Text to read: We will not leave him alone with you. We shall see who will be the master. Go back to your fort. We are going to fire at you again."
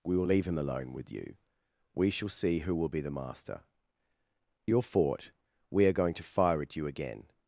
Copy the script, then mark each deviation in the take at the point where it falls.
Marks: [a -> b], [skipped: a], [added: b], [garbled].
We will [skipped: not] leave him alone with you. We shall see who will be the master. [skipped: Go back to] your fort. We are going to fire at you again."